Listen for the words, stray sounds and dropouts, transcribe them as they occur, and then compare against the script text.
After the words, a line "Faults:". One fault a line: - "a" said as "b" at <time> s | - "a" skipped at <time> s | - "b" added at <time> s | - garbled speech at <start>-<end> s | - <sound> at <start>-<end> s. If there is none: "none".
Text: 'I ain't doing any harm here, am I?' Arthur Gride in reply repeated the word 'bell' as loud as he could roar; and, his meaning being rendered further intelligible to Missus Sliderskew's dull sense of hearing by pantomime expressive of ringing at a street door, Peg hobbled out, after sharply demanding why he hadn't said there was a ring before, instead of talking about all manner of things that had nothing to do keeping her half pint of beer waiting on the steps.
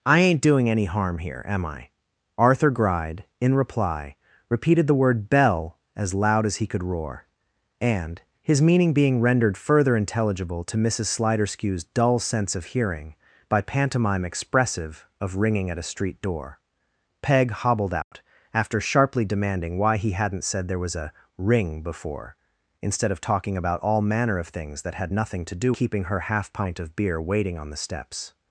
'I ain't doing any harm here, am I?' Arthur Gride in reply repeated the word 'bell' as loud as he could roar; and, his meaning being rendered further intelligible to Missus Sliderskew's dull sense of hearing by pantomime expressive of ringing at a street door, Peg hobbled out, after sharply demanding why he hadn't said there was a ring before, instead of talking about all manner of things that had nothing to do keeping her half pint of beer waiting on the steps.
Faults:
- dropout at 18.0-18.1 s